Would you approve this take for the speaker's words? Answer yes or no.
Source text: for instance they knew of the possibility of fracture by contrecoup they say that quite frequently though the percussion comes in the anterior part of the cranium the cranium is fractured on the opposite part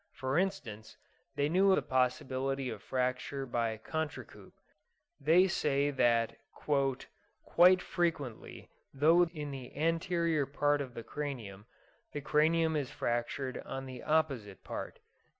no